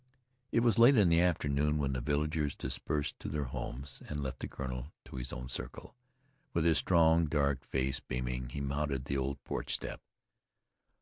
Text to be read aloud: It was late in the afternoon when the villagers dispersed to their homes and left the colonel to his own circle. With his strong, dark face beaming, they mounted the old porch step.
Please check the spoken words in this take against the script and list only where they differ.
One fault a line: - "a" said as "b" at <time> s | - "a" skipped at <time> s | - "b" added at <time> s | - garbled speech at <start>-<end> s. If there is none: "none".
- "they" said as "he" at 8.5 s